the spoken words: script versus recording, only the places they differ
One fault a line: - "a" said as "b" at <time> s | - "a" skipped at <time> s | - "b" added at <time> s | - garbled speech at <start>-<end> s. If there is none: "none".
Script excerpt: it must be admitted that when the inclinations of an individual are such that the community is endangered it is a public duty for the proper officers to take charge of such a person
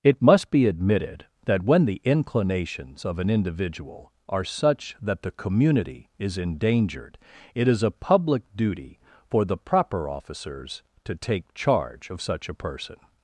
none